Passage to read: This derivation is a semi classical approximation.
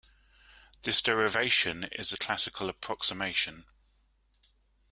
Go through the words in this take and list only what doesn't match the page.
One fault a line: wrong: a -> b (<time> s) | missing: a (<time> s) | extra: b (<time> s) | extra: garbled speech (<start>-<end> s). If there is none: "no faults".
missing: semi (2.2 s)